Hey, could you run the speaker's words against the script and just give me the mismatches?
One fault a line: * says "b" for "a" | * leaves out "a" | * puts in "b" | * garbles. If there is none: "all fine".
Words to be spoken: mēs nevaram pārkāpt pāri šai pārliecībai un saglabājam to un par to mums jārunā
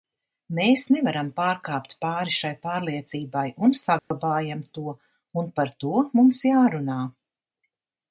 all fine